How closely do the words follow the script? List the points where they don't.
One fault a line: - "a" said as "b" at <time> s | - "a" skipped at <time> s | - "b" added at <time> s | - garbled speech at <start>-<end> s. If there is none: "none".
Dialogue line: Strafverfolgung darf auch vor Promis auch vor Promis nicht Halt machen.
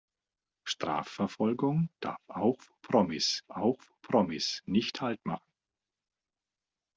none